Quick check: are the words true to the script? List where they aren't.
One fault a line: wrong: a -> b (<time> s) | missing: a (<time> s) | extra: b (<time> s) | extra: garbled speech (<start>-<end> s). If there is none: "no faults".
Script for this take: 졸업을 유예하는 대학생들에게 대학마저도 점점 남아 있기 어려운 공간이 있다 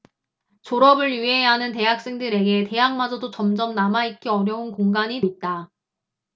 no faults